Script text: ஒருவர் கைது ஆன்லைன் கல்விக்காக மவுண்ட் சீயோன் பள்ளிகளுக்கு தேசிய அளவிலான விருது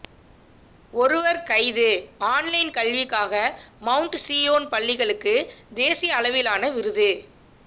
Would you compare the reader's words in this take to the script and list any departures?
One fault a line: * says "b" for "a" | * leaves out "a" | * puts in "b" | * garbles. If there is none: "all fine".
all fine